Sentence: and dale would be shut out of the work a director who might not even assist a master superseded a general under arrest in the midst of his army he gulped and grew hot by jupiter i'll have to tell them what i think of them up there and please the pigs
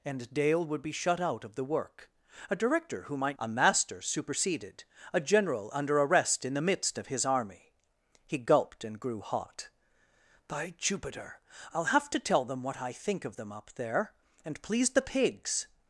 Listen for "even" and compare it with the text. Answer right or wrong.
wrong